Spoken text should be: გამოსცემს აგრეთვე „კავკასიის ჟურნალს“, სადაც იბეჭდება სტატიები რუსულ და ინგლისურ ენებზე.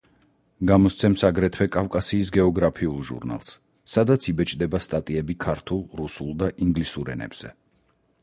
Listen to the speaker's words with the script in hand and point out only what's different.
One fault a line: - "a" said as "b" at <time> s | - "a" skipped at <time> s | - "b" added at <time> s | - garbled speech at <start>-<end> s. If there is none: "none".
- "გეოგრაფიულ" added at 2.4 s
- "ქართულ" added at 5.5 s